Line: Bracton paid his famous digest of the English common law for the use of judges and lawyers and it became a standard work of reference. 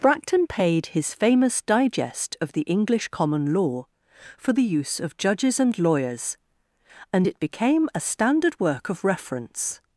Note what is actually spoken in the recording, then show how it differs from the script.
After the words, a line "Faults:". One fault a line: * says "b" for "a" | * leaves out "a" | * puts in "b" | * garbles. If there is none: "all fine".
Bracton paid his famous digest of the English common law for the use of judges and lawyers and it became a standard work of reference.
Faults:
all fine